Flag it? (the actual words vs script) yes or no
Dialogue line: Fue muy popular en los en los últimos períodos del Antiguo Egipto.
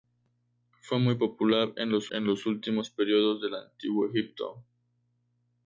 no